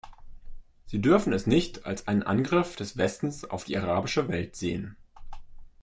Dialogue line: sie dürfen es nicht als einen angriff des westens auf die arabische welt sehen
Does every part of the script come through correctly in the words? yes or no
yes